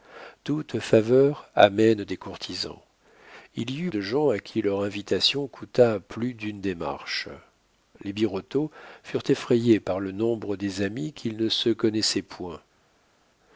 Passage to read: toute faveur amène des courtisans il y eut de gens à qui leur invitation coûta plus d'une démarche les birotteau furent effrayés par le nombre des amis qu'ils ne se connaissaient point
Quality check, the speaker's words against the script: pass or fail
pass